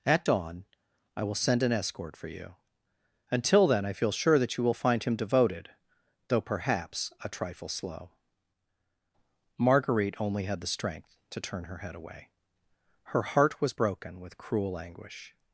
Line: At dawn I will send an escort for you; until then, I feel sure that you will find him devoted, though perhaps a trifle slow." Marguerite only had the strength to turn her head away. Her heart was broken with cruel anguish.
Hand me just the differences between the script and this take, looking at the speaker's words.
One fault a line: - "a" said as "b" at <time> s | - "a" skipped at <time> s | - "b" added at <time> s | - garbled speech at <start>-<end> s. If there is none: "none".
none